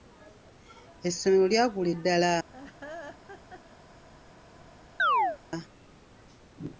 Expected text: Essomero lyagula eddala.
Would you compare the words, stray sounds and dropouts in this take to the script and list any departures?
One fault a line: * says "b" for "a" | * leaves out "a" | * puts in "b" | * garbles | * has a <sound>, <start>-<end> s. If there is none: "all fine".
* has a laugh, 2.5-3.6 s
* has a chirp, 5.0-5.4 s